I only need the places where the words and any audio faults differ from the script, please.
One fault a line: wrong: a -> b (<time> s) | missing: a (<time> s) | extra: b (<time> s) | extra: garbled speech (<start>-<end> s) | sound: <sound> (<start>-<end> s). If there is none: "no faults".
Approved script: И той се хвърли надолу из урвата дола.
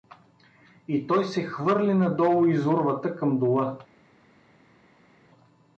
extra: към (3.1 s)